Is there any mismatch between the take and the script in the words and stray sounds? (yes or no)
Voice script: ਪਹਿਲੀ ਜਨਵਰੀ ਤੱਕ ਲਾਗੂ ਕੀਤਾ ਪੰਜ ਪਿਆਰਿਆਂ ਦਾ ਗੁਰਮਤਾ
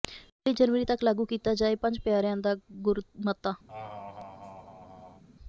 yes